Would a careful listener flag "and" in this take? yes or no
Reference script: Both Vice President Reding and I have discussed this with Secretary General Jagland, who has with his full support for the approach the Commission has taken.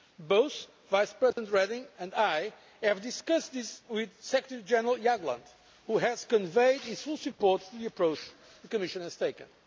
no